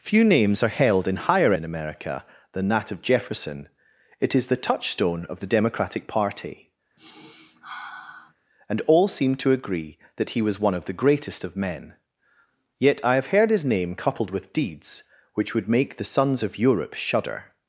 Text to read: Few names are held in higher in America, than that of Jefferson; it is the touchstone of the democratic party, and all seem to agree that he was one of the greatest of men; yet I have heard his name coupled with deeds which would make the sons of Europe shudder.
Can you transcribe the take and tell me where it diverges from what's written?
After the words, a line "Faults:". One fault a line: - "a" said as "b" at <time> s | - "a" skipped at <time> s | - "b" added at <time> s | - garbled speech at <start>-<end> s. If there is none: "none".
Few names are held in higher in America, than that of Jefferson; it is the touchstone of the democratic party, and all seem to agree that he was one of the greatest of men; yet I have heard his name coupled with deeds which would make the sons of Europe shudder.
Faults:
none